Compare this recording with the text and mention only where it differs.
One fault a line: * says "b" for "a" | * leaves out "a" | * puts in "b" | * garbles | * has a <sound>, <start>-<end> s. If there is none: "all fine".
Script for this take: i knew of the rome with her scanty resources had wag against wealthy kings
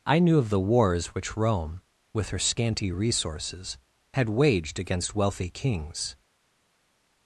* puts in "wars which"
* says "waged" for "wag"